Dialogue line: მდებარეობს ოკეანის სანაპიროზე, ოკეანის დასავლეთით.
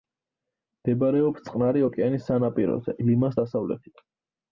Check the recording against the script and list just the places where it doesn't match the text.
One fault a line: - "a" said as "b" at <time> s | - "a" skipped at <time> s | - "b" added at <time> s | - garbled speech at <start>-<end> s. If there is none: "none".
- "წყნარი" added at 1.5 s
- "ოკეანის" said as "ლიმას" at 3.1 s